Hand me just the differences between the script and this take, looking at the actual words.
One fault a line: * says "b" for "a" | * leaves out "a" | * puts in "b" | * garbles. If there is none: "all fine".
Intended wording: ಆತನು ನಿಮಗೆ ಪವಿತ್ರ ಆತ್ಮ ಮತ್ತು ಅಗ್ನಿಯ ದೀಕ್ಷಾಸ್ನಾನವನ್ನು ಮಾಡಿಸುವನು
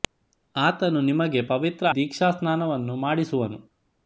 * leaves out "ಆತ್ಮ ಮತ್ತು ಅಗ್ನಿಯ"